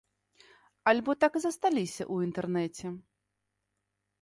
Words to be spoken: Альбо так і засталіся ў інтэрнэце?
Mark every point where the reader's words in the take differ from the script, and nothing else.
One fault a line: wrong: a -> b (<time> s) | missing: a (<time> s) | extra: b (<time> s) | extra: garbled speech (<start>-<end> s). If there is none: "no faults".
no faults